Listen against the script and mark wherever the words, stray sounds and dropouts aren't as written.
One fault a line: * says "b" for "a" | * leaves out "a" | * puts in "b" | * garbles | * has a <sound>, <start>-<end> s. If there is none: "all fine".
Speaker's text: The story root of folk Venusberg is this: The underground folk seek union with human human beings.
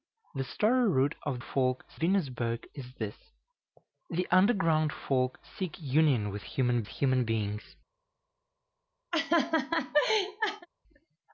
* has a laugh, 9.1-10.7 s